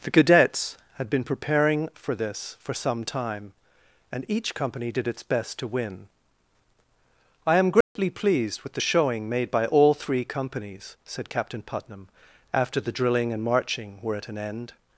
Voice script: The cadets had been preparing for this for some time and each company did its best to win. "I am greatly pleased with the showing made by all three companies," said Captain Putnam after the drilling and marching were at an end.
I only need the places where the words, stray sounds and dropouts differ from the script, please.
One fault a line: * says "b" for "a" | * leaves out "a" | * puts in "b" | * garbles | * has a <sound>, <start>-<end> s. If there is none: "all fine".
* has a dropout, 7.8-8.0 s